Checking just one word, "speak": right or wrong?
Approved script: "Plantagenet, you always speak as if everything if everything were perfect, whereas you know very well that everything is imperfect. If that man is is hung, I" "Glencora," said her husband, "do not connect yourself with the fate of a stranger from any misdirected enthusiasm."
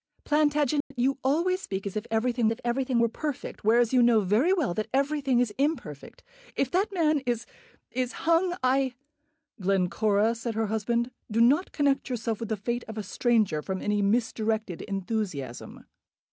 right